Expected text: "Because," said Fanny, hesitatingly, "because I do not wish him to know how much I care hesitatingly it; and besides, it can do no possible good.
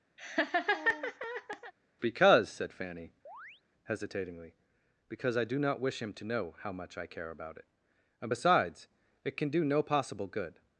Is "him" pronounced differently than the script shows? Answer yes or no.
no